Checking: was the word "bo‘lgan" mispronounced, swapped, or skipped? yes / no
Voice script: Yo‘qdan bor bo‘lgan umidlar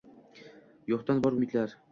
yes